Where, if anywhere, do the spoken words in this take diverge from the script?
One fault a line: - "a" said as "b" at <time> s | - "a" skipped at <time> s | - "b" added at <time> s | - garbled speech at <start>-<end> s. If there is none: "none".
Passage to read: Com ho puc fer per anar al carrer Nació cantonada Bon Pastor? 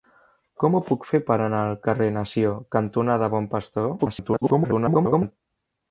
- garbled speech at 4.0-5.3 s